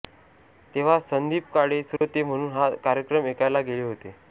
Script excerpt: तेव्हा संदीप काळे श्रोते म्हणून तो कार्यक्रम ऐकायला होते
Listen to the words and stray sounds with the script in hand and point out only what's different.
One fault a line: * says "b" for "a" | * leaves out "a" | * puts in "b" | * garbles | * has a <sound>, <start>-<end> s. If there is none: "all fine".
* has a dropout, 2.0-2.0 s
* says "हा" for "तो"
* puts in "गेले"